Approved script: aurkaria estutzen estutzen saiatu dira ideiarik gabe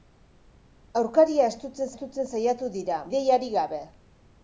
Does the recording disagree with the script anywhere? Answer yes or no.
no